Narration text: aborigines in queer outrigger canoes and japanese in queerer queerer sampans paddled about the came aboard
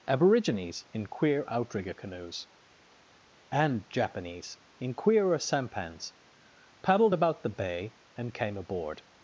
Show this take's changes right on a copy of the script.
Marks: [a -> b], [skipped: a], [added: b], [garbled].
aborigines in queer outrigger canoes and japanese in queerer [skipped: queerer] sampans paddled about the [added: bay and] came aboard